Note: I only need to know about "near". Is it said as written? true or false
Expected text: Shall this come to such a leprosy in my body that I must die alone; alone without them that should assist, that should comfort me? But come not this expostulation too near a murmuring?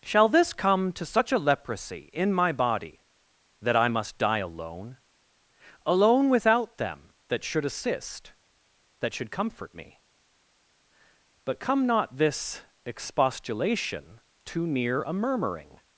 true